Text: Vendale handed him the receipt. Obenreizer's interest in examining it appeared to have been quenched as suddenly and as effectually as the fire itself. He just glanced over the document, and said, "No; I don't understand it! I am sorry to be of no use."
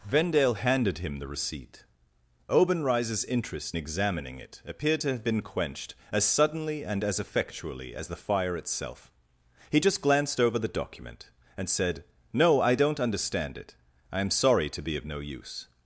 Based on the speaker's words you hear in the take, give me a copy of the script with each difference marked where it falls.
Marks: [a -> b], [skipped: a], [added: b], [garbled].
Vendale handed him the receipt. Obenreizer's interest [skipped: in] examining it appeared to have been quenched as suddenly and as effectually as the fire itself. He just glanced over the document, and said, "No; I don't understand it! I am sorry to be of no use."